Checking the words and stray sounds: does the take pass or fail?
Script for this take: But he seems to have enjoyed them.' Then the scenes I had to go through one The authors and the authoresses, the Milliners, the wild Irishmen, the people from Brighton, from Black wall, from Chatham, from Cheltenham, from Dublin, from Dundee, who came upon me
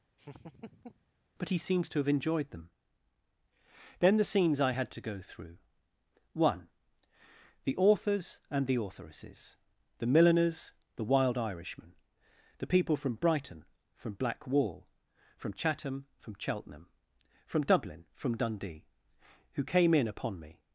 fail